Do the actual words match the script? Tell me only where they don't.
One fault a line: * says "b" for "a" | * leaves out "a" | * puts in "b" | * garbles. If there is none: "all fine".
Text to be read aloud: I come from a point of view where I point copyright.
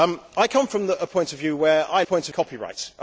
all fine